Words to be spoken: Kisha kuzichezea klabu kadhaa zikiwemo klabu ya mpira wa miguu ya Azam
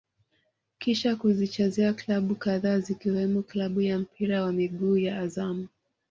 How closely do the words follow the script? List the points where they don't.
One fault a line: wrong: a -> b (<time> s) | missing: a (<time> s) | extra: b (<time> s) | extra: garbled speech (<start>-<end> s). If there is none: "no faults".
no faults